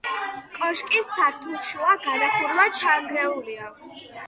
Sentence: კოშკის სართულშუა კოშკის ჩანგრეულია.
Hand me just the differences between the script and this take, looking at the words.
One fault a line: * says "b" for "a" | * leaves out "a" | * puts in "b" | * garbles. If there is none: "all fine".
* says "გადახურვა" for "კოშკის"